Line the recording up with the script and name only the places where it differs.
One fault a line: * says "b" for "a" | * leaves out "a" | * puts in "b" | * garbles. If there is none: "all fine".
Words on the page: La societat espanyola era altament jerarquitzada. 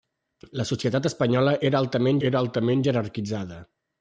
* puts in "era altament"